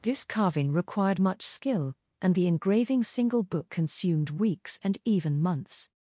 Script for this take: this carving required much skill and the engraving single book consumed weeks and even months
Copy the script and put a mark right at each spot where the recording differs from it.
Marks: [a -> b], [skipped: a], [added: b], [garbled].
this carving required much skill and the engraving single book consumed weeks and even months